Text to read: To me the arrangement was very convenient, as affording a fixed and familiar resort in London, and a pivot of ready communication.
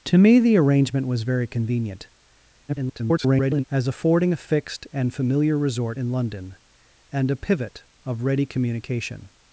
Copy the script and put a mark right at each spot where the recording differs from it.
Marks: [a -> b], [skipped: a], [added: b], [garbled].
To me the arrangement was very convenient, [garbled] as affording a fixed and familiar resort in London, and a pivot of ready communication.